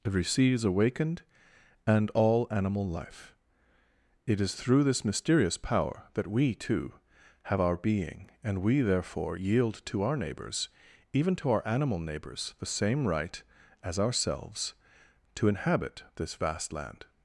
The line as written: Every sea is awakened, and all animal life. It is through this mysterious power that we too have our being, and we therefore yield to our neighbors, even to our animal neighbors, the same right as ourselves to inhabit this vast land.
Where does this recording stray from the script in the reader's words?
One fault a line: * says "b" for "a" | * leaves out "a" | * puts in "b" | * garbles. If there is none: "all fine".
all fine